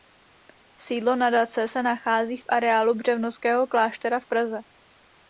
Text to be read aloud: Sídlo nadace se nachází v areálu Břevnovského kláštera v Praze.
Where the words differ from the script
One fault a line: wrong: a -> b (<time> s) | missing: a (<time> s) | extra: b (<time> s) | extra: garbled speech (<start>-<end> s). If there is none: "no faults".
no faults